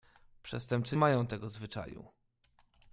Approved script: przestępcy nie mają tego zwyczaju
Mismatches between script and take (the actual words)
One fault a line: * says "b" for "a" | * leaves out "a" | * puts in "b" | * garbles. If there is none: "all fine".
* leaves out "nie"